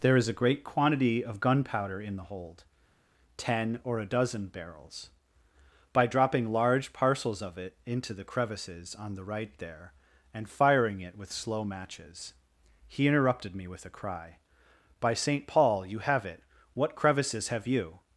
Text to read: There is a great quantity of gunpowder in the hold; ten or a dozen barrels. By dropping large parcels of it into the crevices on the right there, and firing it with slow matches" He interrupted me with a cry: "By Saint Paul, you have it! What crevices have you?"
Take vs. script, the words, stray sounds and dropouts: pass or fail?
pass